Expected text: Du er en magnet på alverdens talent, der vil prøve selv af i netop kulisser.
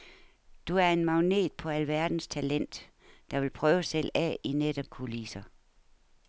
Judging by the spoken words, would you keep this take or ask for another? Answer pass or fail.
pass